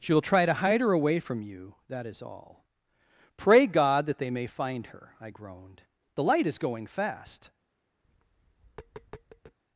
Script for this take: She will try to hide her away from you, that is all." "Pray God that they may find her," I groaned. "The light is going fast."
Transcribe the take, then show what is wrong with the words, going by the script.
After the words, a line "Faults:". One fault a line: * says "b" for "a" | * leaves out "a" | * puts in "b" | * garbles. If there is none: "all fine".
She will try to hide her away from you, that is all." "Pray God that they may find her," I groaned. "The light is going fast."
Faults:
all fine